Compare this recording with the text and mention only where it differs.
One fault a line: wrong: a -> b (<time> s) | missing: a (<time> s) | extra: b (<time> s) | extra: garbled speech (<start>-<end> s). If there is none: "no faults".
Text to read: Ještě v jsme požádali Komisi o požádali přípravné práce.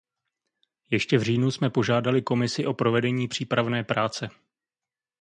extra: říjnu (1.2 s)
wrong: požádali -> provedení (2.7 s)